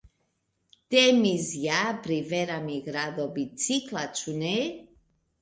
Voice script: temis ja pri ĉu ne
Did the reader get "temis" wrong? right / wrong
right